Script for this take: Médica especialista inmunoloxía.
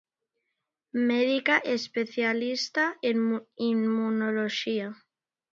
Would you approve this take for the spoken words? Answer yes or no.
no